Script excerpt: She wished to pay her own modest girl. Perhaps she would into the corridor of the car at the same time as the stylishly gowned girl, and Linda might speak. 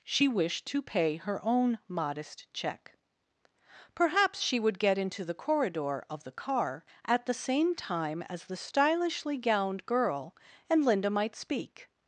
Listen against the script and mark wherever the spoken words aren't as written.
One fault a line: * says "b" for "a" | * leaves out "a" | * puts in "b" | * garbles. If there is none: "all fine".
* says "check" for "girl"
* puts in "get"